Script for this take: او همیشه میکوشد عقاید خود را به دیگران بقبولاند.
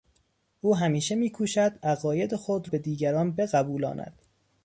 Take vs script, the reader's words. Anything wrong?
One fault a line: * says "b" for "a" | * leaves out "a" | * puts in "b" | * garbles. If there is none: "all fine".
* leaves out "را"